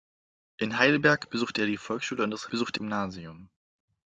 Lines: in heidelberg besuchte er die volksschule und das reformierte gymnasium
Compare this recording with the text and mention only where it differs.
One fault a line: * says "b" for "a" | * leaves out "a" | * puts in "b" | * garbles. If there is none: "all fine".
* says "besuchte" for "reformierte"